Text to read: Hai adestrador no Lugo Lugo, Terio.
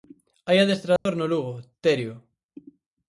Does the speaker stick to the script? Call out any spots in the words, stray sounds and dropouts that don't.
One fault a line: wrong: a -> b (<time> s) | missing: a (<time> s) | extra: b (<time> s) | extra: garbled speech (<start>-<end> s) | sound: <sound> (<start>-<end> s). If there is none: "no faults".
sound: dropout (1.0-1.1 s)
missing: Lugo (1.5 s)